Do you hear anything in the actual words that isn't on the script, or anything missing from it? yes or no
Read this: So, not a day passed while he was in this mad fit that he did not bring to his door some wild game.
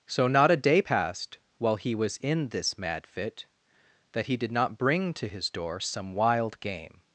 no